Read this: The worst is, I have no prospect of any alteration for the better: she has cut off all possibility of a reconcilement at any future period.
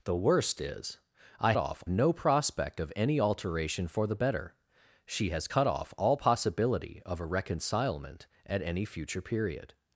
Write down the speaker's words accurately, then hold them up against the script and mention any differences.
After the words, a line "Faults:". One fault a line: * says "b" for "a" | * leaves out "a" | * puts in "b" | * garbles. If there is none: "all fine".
The worst is, I off no prospect of any alteration for the better: she has cut off all possibility of a reconcilement at any future period.
Faults:
* says "off" for "have"